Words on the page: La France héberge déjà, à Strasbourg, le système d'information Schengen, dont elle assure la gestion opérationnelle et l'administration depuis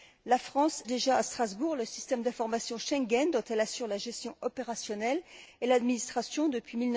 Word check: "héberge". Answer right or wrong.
wrong